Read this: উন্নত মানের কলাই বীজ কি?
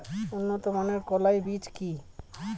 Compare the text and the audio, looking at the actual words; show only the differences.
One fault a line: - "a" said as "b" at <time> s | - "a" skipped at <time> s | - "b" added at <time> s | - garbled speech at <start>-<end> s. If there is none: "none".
none